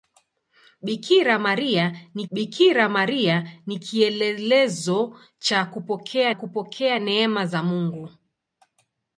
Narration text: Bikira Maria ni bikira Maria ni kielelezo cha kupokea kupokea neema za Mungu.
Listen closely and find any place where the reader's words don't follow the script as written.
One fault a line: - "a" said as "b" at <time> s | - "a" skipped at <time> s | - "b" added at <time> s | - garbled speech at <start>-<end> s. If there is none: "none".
none